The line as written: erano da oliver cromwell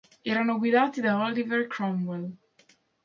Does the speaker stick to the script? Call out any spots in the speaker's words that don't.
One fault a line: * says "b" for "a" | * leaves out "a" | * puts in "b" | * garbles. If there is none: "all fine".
* puts in "guidati"